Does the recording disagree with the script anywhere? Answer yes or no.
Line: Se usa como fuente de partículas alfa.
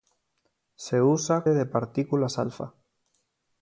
yes